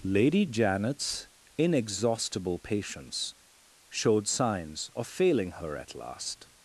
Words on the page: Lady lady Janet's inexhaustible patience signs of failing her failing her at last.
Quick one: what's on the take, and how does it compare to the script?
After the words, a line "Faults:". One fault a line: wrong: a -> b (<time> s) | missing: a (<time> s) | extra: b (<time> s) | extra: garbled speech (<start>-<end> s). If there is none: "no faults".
Lady Janet's inexhaustible patience showed signs of failing her at last.
Faults:
missing: lady (0.5 s)
extra: showed (3.9 s)
missing: failing her (5.7 s)